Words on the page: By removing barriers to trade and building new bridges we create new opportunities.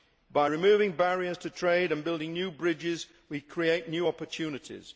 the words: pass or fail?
pass